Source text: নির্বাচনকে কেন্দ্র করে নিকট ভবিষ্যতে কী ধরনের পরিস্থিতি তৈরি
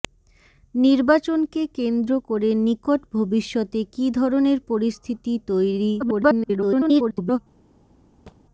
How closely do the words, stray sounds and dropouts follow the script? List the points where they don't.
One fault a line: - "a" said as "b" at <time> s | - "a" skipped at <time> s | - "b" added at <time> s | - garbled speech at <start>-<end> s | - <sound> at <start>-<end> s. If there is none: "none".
- garbled speech at 6.0-7.4 s
- thud at 8.3-8.4 s